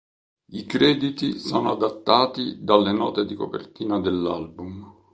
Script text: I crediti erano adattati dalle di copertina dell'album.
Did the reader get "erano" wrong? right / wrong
wrong